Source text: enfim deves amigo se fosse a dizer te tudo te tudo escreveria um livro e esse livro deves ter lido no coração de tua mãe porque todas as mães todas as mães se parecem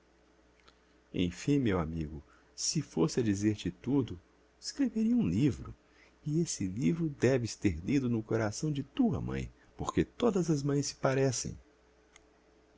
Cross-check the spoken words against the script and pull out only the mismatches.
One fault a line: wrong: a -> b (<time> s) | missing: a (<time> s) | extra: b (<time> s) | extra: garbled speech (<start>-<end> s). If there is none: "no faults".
wrong: deves -> meu (1.6 s)
missing: te tudo (4.2 s)
missing: todas as mães (10.9 s)